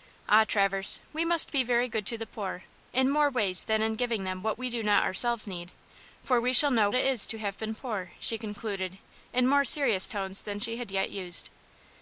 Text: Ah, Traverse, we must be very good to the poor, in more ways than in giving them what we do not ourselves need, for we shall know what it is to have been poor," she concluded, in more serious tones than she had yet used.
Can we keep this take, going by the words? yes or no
no